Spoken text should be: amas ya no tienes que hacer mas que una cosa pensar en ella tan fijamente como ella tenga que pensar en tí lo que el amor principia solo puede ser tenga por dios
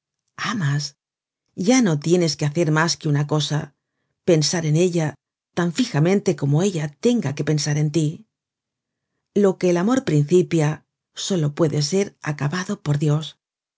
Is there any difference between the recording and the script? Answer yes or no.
yes